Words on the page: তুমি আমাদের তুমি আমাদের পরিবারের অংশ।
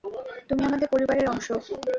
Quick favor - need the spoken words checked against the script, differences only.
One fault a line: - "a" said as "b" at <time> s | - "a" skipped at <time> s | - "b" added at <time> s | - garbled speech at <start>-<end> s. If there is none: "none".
- "তুমি আমাদের" skipped at 0.9 s